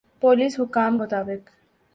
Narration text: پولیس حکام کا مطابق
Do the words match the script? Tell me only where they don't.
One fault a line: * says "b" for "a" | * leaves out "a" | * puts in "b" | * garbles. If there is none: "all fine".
* leaves out "کا"